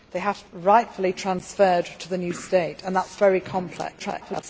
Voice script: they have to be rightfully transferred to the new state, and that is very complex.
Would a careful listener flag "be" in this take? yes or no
yes